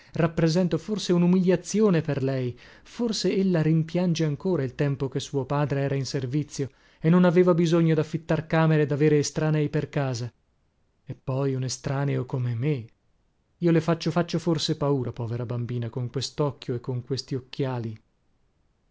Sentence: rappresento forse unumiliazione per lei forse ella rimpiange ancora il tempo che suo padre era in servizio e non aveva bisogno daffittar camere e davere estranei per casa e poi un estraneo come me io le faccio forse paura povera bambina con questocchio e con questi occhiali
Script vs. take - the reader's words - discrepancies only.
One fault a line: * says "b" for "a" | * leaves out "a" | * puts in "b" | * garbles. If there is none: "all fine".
* puts in "faccio"